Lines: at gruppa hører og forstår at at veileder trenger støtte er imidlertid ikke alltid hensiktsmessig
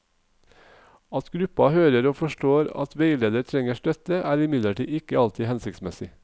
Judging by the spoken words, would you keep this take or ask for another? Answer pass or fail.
fail